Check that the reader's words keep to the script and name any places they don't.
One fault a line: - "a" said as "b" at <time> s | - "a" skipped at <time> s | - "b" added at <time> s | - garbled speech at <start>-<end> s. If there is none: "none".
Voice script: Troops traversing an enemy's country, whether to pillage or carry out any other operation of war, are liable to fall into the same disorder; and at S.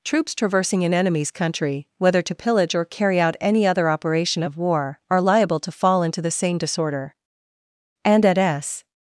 none